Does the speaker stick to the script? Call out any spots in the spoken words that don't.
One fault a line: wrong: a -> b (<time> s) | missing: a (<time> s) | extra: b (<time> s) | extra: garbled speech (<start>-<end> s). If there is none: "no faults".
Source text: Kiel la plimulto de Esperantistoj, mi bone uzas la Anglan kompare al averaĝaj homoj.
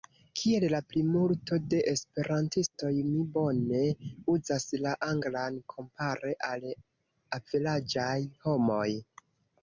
no faults